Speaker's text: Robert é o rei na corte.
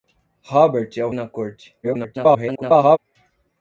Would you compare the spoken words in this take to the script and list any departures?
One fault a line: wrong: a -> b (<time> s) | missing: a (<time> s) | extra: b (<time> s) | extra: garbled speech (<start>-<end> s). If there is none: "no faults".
missing: rei (1.1 s)
extra: garbled speech (1.8-3.0 s)